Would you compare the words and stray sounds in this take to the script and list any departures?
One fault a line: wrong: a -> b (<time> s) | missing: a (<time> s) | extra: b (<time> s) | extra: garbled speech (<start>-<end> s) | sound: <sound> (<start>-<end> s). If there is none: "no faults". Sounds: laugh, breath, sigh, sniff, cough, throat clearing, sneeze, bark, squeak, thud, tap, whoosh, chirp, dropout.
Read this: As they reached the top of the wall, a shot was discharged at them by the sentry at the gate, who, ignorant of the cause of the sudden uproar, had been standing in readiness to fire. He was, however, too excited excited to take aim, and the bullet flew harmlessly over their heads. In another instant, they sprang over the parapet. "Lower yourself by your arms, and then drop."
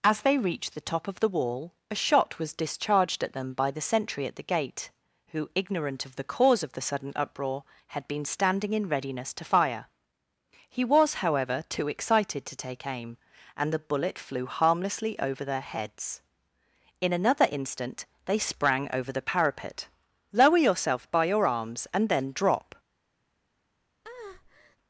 missing: excited (12.5 s)
sound: breath (24.0-24.8 s)